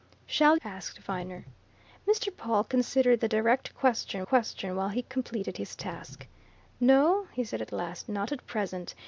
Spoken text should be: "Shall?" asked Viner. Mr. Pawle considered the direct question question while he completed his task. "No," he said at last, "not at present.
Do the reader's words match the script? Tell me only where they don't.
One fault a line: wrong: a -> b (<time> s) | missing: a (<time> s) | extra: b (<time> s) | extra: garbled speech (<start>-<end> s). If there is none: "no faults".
no faults